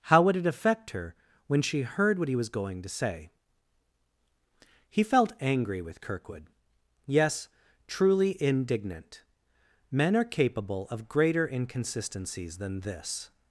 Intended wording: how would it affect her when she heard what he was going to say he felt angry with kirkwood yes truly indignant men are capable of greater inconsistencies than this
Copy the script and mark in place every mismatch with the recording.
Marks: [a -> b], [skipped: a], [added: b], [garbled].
how would it affect her when she heard what he was going to say he felt angry with kirkwood yes truly indignant men are capable of greater inconsistencies than this